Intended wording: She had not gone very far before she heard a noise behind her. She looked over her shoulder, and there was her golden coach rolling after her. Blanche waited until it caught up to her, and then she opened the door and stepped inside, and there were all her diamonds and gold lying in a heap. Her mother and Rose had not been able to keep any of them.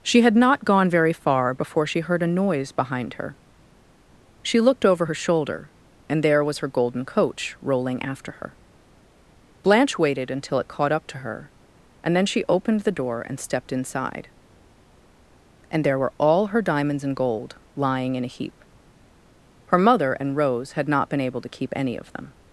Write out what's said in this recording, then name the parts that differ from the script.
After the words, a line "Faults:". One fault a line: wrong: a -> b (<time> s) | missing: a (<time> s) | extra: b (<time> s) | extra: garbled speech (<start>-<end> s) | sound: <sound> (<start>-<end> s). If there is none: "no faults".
She had not gone very far before she heard a noise behind her. She looked over her shoulder, and there was her golden coach rolling after her. Blanche waited until it caught up to her, and then she opened the door and stepped inside, and there were all her diamonds and gold lying in a heap. Her mother and Rose had not been able to keep any of them.
Faults:
no faults